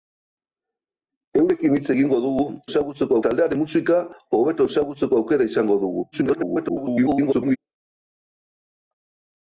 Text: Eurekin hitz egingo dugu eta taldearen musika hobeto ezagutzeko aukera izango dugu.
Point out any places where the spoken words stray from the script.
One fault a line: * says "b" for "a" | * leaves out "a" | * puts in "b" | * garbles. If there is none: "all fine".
* says "ezagutzeko" for "eta"
* garbles